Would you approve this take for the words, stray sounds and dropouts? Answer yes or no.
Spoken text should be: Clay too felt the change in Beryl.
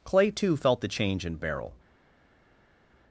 yes